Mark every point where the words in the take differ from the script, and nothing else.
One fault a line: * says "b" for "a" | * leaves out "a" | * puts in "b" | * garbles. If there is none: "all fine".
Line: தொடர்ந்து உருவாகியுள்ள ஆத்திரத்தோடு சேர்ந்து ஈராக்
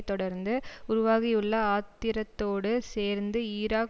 all fine